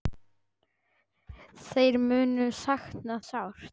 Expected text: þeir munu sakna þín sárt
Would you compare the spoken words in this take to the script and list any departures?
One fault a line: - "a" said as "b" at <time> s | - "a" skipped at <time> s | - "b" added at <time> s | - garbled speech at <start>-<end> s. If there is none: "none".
- "þín" skipped at 3.2 s